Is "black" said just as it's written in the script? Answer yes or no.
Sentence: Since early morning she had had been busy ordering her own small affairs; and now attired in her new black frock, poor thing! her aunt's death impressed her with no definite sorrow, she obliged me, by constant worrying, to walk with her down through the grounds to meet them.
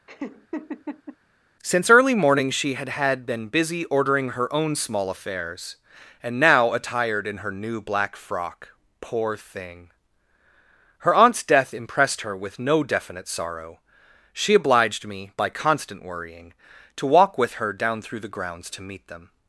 yes